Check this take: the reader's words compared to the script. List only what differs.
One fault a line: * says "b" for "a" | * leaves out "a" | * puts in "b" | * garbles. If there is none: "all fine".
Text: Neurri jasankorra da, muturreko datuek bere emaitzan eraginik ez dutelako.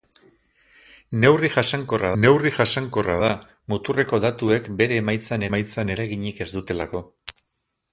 * puts in "neurri jasankorra"
* puts in "emaitzan"